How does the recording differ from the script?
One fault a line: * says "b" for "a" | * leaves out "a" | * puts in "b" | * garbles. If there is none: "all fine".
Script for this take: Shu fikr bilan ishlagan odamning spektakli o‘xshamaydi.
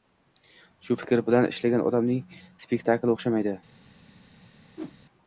all fine